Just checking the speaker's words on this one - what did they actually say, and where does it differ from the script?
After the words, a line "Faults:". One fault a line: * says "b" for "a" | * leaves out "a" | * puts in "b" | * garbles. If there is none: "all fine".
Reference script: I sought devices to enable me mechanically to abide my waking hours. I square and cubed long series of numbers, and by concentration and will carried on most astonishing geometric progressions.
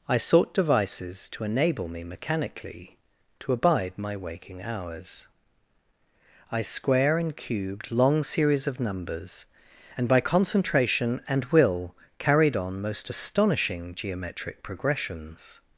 I sought devices to enable me mechanically to abide my waking hours. I square and cubed long series of numbers, and by concentration and will carried on most astonishing geometric progressions.
Faults:
all fine